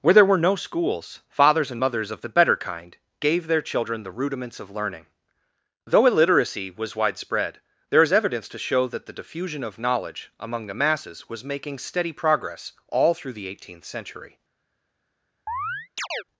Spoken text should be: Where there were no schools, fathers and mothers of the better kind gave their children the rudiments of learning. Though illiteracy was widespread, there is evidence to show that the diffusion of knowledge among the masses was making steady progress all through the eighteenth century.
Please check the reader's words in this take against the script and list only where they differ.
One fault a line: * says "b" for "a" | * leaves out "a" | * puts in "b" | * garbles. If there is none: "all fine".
all fine